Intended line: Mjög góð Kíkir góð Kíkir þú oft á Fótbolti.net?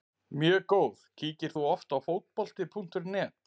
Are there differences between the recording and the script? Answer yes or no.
yes